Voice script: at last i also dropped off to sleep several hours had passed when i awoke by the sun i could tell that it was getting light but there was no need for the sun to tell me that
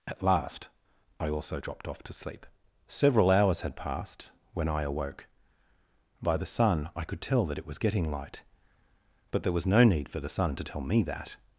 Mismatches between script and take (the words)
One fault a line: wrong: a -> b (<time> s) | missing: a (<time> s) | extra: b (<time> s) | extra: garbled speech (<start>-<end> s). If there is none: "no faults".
no faults